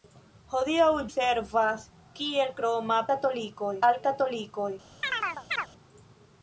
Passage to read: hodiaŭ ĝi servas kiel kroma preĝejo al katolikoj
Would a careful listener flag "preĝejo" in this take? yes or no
yes